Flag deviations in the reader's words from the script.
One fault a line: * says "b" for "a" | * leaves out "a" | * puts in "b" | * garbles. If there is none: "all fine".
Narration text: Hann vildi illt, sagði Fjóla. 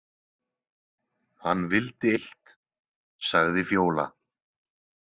all fine